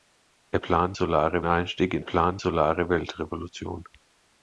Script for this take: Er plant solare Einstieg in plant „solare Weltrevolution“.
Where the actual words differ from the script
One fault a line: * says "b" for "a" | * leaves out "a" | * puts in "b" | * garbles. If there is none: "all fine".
all fine